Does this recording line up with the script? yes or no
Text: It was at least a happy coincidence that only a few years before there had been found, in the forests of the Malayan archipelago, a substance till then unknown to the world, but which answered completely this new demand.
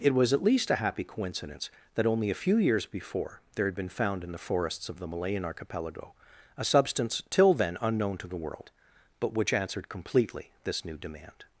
yes